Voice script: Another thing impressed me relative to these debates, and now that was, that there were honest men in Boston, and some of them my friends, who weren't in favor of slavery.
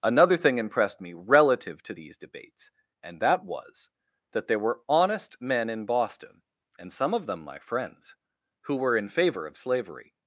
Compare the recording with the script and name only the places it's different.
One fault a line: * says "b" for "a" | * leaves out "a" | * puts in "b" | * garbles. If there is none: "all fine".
* leaves out "now"
* says "were" for "weren't"